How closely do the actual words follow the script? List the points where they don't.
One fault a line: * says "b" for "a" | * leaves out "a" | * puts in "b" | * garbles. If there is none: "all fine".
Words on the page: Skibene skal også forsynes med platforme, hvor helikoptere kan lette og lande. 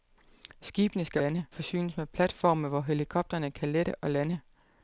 * says "lande" for "også"